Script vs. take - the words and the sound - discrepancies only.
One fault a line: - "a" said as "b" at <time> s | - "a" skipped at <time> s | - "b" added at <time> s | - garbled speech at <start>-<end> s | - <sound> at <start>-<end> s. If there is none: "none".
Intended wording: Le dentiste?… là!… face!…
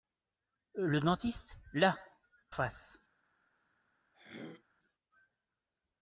- throat clearing at 4.1-4.6 s